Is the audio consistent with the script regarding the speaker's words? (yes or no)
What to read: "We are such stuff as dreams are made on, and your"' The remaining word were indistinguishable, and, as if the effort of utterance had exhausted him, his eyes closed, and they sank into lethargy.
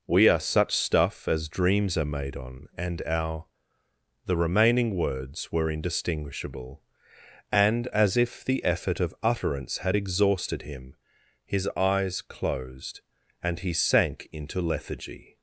no